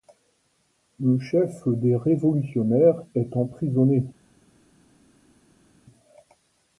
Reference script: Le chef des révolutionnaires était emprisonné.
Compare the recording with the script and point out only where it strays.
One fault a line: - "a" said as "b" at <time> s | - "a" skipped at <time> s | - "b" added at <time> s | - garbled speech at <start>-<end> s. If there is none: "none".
- "était" said as "est" at 3.1 s